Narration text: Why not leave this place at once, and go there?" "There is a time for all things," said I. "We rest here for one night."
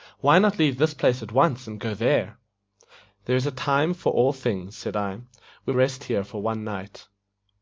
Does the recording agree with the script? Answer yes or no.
yes